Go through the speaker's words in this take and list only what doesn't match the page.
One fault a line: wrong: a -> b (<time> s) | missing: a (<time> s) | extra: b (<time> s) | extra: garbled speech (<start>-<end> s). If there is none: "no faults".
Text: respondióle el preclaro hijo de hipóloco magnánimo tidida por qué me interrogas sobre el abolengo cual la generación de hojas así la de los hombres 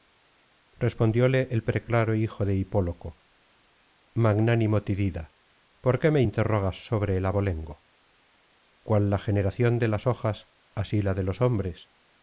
extra: las (9.9 s)